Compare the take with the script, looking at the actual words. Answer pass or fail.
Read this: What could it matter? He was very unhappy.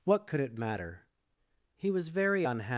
pass